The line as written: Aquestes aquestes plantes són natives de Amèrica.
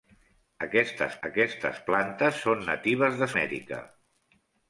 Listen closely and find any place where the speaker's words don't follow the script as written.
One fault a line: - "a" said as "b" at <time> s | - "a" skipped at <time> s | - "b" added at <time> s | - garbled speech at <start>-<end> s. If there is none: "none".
none